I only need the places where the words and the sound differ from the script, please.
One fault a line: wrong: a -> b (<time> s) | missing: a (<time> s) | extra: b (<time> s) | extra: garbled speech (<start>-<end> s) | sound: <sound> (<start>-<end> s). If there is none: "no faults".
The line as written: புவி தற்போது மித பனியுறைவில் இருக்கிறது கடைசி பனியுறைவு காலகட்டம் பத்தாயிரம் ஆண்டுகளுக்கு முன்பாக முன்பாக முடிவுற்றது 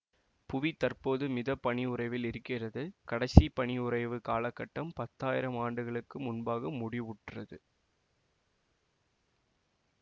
missing: முன்பாக (6.7 s)